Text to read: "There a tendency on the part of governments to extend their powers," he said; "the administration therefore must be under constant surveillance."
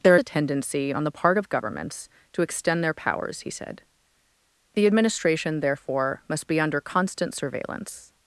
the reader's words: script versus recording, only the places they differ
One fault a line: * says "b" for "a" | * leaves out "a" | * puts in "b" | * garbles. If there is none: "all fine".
all fine